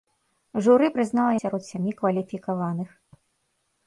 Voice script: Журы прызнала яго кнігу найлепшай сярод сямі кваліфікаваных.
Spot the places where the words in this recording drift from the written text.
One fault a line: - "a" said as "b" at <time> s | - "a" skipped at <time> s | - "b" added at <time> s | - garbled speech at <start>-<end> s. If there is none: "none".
- "яго кнігу найлепшай" skipped at 1.3 s